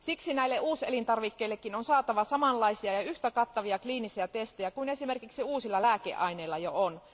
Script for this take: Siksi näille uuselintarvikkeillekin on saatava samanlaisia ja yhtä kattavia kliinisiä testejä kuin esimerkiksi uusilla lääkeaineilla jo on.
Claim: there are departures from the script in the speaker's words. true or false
false